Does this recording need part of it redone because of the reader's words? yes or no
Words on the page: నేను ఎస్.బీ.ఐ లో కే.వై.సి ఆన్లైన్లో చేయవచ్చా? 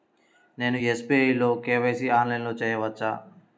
no